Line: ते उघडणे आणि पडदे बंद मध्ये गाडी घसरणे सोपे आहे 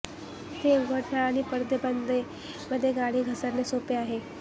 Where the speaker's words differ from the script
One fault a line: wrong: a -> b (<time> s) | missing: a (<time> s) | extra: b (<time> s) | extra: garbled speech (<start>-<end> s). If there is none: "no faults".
no faults